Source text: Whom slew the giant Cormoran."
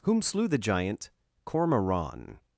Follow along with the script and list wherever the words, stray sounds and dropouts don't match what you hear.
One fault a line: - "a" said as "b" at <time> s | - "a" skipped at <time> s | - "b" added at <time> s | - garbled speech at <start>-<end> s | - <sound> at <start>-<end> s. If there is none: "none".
none